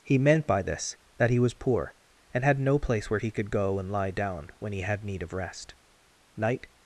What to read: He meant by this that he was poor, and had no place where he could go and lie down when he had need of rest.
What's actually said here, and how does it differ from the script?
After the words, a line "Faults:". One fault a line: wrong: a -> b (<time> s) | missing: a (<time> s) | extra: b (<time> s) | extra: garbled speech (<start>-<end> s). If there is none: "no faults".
He meant by this that he was poor, and had no place where he could go and lie down when he had need of rest. Night
Faults:
extra: Night (6.3 s)